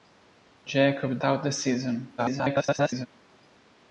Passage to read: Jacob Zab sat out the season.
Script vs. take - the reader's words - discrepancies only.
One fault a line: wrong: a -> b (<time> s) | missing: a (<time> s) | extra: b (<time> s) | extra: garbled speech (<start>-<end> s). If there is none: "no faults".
missing: Zab sat (1.2 s)
extra: garbled speech (2.2-3.1 s)